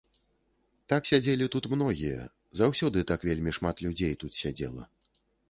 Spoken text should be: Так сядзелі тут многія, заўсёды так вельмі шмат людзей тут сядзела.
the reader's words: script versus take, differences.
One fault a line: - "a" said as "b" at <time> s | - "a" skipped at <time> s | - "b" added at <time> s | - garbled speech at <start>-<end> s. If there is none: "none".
none